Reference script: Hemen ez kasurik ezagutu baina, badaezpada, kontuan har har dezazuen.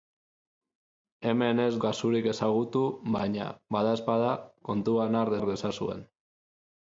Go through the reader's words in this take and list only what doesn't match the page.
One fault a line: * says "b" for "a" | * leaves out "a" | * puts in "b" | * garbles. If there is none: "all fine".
all fine